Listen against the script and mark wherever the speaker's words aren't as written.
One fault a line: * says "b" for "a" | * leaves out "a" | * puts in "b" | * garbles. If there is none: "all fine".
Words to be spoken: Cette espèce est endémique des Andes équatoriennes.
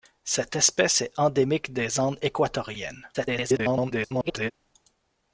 * garbles